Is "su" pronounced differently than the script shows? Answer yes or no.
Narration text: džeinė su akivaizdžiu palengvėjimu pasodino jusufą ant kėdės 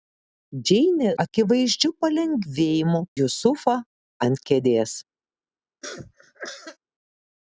yes